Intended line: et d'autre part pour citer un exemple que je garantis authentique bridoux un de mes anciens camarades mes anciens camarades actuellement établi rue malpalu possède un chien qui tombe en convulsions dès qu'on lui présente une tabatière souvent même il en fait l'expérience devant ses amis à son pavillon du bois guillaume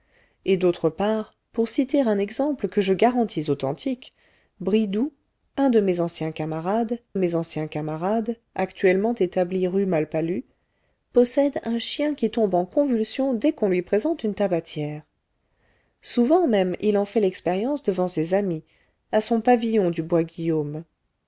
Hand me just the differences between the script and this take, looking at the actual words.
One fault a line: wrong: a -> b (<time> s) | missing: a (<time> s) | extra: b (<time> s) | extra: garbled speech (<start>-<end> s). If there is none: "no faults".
no faults